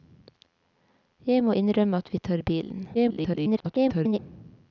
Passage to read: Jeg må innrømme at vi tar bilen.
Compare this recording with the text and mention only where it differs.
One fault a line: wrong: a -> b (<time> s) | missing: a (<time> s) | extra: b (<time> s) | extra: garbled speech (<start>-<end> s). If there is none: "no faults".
extra: garbled speech (2.9-4.2 s)